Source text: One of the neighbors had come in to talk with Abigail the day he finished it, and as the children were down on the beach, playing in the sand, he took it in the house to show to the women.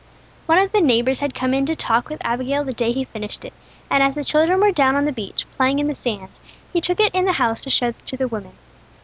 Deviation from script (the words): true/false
false